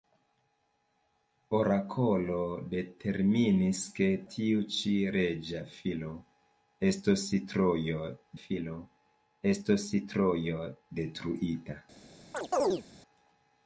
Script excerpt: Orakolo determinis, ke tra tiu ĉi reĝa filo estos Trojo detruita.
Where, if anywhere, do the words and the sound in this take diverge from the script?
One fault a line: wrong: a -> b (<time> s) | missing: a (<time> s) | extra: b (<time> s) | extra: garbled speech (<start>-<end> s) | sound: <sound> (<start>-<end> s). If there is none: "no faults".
missing: tra (4.1 s)
extra: filo estos Trojo (8.4 s)
sound: chirp (12.3-12.8 s)